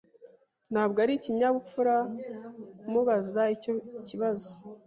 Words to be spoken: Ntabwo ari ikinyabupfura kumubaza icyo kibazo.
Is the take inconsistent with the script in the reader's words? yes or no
no